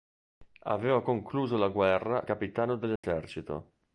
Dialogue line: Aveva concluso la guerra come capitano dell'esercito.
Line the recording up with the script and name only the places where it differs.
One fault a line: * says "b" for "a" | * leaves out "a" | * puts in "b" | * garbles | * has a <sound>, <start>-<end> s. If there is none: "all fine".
* leaves out "come"
* has a dropout, 3.0-3.0 s